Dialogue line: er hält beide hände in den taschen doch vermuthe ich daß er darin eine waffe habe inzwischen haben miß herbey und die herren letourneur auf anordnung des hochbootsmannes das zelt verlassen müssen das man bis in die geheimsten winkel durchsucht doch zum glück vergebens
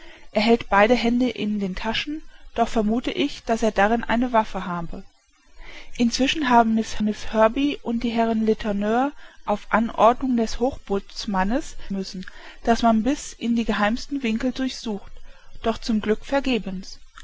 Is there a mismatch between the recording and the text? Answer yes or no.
yes